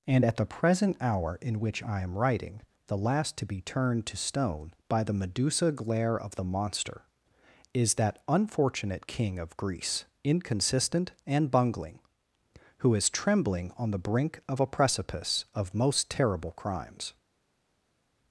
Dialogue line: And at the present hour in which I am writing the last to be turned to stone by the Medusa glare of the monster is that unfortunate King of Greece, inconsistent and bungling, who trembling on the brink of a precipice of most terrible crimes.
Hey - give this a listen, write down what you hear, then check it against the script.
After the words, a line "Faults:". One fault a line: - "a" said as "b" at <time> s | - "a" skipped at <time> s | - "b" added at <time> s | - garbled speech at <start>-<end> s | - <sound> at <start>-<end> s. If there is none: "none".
And at the present hour in which I am writing the last to be turned to stone by the Medusa glare of the monster is that unfortunate King of Greece, inconsistent and bungling, who is trembling on the brink of a precipice of most terrible crimes.
Faults:
- "is" added at 12.9 s